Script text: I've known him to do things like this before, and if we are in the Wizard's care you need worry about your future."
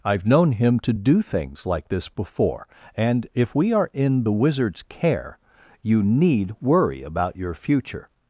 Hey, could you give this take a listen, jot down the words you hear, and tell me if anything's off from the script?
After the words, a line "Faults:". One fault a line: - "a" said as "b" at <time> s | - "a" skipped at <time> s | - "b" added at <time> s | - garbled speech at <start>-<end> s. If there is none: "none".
I've known him to do things like this before, and if we are in the Wizard's care you need worry about your future."
Faults:
none